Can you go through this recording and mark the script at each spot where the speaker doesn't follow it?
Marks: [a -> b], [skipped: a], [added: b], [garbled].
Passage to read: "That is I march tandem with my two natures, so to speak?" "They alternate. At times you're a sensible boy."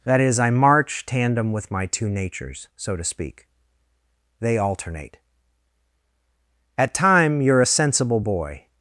"That is I march tandem with my two natures, so to speak?" "They alternate. At [times -> time] you're a sensible boy."